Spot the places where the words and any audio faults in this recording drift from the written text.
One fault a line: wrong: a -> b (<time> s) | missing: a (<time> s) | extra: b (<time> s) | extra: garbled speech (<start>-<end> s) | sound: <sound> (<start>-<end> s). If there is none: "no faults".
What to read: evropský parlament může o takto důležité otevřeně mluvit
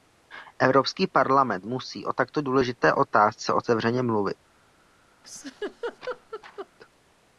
wrong: může -> musí (1.6 s)
extra: otázce (2.9 s)
sound: laugh (5.2-6.7 s)